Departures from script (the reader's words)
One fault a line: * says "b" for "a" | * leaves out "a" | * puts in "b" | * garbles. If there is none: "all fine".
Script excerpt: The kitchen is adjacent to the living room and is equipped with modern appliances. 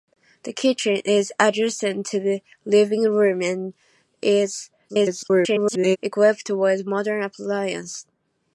* garbles